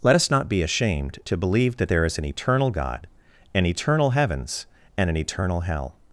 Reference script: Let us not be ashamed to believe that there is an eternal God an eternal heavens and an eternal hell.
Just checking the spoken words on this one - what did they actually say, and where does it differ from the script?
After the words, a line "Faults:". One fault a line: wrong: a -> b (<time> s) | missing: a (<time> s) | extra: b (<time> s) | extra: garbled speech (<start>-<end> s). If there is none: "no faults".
Let us not be ashamed to believe that there is an eternal God an eternal heavens and an eternal hell.
Faults:
no faults